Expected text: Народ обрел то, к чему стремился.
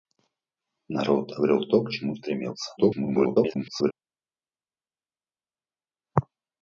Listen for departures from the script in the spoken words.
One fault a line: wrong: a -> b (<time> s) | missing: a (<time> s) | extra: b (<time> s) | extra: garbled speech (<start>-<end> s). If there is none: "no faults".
extra: garbled speech (2.8-3.9 s)